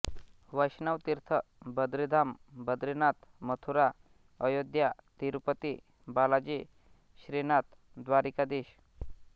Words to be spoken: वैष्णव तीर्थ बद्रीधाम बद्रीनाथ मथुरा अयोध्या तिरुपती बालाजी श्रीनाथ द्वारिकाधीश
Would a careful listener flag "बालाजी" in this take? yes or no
no